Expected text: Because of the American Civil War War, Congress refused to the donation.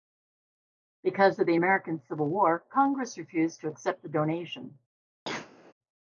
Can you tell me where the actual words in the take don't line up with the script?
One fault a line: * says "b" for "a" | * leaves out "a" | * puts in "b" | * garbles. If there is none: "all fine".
* leaves out "War"
* puts in "accept"